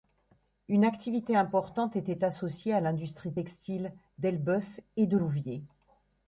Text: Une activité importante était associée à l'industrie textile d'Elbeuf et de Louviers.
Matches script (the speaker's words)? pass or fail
pass